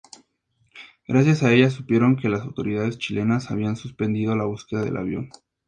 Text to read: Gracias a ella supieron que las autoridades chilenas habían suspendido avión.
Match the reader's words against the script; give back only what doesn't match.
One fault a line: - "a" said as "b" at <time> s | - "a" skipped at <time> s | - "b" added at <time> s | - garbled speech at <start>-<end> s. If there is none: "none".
- "la búsqueda del" added at 4.3 s